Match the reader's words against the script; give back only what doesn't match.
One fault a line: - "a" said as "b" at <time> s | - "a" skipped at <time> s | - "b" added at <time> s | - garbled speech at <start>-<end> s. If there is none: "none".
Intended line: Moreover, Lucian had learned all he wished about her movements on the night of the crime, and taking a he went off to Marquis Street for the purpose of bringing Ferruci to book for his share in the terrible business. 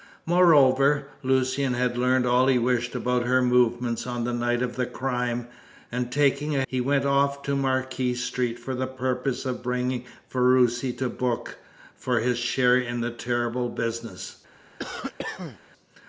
none